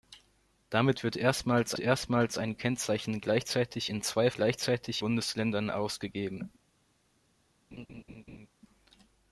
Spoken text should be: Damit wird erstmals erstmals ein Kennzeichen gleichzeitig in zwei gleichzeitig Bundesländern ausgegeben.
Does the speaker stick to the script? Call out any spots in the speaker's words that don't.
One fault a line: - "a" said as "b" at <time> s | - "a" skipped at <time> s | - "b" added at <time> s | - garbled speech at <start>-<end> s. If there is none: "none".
none